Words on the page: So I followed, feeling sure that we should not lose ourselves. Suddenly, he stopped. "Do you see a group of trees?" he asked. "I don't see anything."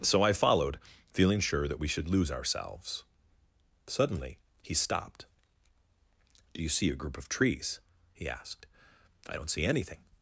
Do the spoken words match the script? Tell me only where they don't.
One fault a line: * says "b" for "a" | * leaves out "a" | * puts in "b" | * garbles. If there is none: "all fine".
* leaves out "not"